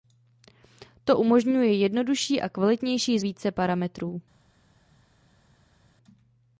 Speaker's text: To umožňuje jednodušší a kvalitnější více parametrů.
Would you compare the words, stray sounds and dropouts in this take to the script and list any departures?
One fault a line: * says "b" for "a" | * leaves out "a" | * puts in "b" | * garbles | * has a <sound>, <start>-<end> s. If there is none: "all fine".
all fine